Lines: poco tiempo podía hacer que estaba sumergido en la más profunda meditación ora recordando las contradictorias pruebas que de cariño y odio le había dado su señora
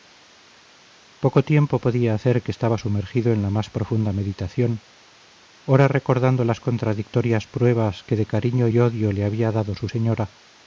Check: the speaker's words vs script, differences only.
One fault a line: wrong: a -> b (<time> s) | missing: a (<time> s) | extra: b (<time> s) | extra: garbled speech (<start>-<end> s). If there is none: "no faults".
no faults